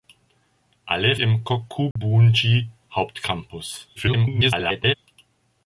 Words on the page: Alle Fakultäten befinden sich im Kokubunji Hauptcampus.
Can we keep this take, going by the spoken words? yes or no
no